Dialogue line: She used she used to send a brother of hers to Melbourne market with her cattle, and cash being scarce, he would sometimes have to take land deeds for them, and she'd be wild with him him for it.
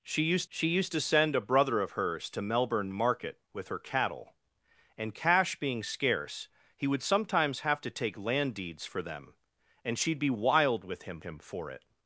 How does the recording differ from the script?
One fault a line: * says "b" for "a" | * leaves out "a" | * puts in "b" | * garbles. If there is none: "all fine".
all fine